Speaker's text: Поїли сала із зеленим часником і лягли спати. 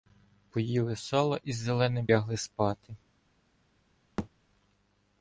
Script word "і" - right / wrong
wrong